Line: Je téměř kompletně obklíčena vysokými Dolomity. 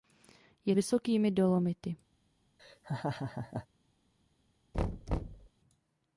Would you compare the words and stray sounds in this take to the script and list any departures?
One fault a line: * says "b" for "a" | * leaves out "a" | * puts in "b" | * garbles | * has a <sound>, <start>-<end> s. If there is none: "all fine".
* leaves out "téměř kompletně obklíčena"
* has a laugh, 2.6-3.7 s
* has a thud, 4.7-5.5 s